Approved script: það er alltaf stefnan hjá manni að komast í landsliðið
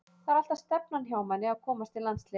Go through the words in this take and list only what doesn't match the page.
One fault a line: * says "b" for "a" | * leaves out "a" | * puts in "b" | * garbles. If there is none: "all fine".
all fine